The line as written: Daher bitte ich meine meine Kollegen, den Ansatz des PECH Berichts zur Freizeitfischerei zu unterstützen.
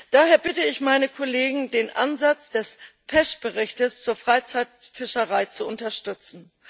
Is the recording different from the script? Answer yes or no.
yes